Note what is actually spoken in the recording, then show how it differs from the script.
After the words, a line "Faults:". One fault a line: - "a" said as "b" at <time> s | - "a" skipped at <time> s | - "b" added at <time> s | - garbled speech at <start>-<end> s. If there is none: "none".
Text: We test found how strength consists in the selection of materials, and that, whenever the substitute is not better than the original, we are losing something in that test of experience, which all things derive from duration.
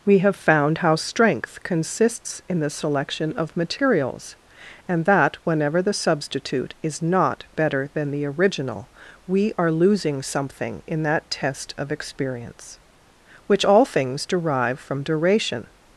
We have found how strength consists in the selection of materials, and that, whenever the substitute is not better than the original, we are losing something in that test of experience, which all things derive from duration.
Faults:
- "test" said as "have" at 0.2 s